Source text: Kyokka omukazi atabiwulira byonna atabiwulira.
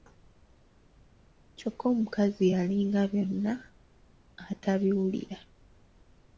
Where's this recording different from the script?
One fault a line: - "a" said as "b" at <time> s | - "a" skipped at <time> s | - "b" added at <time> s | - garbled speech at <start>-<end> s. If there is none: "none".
- "atabiwulira" said as "yalinga" at 2.5 s